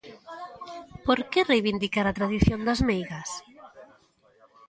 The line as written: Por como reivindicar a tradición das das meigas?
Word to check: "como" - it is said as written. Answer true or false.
false